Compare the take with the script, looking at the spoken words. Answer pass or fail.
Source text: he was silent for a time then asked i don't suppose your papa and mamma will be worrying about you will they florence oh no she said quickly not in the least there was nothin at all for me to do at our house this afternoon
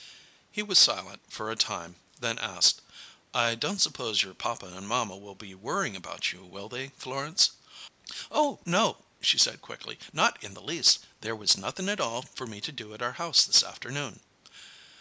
pass